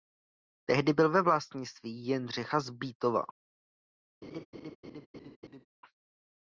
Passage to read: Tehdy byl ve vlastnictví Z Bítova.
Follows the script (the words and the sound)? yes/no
no